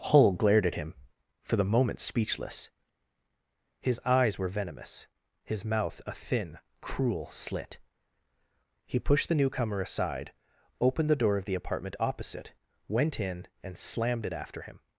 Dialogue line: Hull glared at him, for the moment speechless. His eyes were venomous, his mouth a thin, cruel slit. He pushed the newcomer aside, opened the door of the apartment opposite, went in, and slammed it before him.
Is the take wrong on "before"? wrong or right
wrong